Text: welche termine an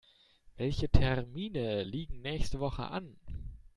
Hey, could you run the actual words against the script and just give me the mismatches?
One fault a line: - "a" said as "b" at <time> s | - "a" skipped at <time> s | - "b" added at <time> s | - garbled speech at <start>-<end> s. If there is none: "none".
- "liegen nächste woche" added at 1.8 s